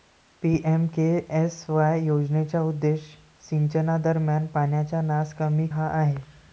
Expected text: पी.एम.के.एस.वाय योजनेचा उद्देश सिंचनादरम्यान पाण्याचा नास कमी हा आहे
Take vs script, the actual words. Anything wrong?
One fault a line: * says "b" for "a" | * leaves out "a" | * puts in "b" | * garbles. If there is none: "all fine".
all fine